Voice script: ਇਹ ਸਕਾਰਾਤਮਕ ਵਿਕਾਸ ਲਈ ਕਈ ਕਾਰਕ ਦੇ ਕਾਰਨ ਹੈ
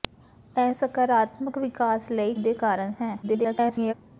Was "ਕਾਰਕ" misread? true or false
true